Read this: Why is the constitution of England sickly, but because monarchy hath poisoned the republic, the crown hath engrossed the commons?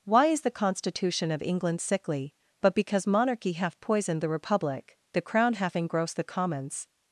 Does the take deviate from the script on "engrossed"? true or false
false